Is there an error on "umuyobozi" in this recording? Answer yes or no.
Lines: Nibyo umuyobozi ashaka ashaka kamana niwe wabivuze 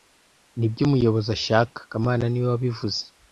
no